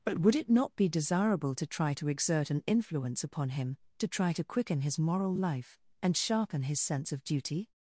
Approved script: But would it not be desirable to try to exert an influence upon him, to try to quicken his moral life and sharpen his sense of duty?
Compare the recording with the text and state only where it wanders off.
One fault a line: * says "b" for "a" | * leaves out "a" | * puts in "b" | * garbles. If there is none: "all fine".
all fine